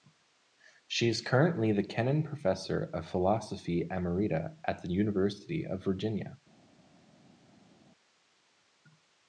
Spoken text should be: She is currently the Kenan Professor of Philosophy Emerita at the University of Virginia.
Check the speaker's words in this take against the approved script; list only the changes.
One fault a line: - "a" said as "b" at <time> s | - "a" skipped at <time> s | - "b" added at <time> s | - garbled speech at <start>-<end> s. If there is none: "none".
none